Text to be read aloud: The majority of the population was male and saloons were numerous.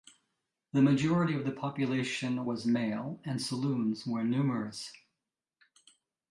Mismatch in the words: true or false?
false